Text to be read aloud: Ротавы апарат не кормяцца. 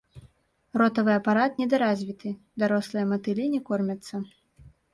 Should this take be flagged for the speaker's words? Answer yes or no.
yes